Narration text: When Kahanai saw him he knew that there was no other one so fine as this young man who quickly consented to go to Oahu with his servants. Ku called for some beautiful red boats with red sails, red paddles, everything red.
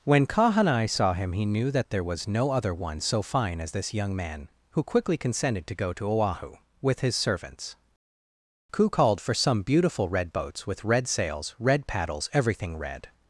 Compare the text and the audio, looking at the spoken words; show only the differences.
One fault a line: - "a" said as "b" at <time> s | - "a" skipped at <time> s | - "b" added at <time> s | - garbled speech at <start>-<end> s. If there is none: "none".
none